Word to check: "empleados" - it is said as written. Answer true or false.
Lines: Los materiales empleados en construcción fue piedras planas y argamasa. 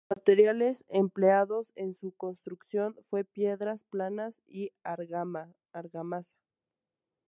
true